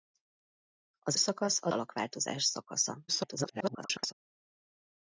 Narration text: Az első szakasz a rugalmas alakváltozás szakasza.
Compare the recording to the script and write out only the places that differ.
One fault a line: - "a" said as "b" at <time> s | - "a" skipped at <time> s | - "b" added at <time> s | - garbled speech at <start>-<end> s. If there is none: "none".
- "első" skipped at 1.2 s
- "rugalmas" skipped at 1.7 s
- garbled speech at 3.1-4.1 s